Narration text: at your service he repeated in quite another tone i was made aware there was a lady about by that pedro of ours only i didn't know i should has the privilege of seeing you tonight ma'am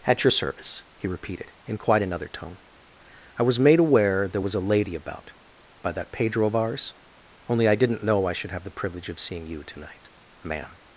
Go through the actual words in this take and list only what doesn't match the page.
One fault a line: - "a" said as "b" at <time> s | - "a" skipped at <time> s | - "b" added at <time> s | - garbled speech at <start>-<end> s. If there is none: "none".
- "has" said as "have" at 8.5 s